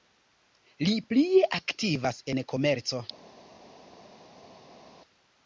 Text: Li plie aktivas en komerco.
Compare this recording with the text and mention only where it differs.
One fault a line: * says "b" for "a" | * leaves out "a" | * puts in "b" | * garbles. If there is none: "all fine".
all fine